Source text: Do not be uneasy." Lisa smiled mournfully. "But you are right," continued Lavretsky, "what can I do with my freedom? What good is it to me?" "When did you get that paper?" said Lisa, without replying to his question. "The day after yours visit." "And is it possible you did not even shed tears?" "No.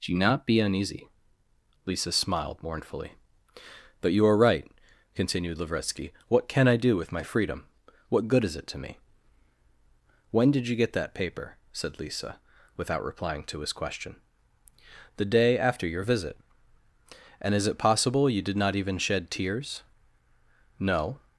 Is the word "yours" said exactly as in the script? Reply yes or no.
no